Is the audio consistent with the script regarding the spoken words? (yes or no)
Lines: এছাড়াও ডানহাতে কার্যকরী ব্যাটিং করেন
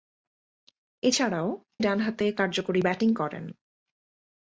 yes